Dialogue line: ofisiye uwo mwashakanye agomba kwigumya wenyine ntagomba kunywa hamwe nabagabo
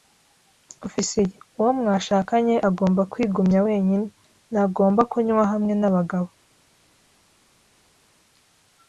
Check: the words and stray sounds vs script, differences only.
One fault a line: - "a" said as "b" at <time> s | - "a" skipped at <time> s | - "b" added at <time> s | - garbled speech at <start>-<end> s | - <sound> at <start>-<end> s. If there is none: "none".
none